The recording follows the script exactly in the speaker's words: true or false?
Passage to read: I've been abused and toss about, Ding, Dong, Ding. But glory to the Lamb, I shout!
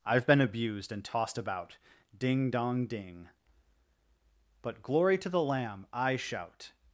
false